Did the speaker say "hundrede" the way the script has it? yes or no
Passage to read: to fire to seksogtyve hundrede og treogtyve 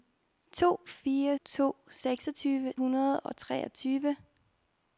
yes